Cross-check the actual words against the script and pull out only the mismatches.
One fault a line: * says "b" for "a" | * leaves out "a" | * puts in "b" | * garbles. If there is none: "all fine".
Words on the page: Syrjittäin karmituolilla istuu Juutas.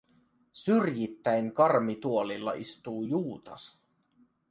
all fine